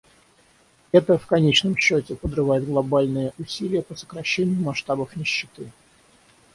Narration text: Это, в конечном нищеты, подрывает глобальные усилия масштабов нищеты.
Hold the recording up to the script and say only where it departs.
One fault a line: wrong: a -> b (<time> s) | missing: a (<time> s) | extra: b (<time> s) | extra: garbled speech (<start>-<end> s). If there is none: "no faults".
wrong: нищеты -> счете (1.8 s)
extra: по сокращению (3.8 s)